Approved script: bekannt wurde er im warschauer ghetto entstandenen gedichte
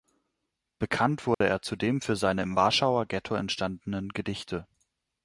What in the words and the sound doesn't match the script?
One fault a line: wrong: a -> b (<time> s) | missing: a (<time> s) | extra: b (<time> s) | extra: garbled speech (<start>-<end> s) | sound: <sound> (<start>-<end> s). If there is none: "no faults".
sound: dropout (1.3-1.4 s)
extra: zudem für seine (1.6 s)